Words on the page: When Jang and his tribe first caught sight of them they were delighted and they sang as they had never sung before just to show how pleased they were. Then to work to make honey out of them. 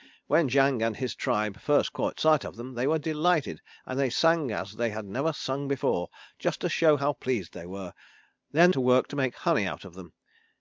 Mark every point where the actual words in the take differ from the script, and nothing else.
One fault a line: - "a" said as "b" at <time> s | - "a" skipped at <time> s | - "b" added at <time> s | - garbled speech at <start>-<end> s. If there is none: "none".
none